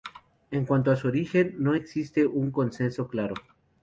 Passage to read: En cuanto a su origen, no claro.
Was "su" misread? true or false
false